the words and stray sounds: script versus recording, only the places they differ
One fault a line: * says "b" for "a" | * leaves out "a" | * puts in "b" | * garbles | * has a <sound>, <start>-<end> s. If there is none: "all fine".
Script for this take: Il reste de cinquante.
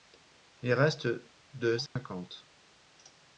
* has a dropout, 1.9-2.0 s